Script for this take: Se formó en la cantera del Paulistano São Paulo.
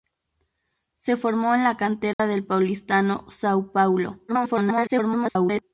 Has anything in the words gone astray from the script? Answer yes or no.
yes